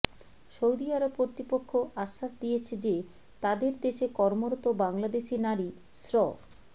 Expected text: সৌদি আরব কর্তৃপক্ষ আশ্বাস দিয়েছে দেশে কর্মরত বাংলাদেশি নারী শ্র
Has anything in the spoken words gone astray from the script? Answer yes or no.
yes